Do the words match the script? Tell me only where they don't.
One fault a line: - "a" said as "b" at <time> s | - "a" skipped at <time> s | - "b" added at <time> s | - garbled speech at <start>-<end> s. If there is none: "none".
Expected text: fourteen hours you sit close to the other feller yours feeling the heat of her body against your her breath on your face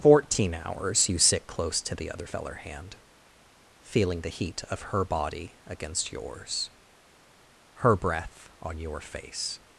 - "yours" said as "hand" at 2.6 s
- "your" said as "yours" at 6.1 s